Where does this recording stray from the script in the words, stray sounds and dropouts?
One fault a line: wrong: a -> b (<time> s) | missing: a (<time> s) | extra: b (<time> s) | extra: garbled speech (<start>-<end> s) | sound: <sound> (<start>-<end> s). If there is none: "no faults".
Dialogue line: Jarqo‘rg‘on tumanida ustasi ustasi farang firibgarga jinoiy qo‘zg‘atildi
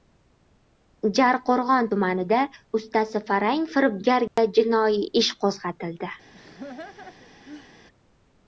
missing: ustasi (3.2 s)
sound: dropout (4.3-4.4 s)
extra: ish (5.2 s)
sound: laugh (6.3-7.7 s)